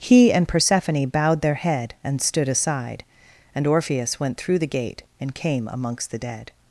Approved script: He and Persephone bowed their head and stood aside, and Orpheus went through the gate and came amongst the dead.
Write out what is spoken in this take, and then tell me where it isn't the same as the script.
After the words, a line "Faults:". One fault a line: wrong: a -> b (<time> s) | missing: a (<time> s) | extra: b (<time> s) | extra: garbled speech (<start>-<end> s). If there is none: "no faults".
He and Persephone bowed their head and stood aside, and Orpheus went through the gate and came amongst the dead.
Faults:
no faults